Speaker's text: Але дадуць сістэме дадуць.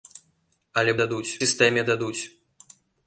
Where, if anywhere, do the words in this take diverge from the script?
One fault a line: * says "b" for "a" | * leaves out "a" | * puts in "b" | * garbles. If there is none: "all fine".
all fine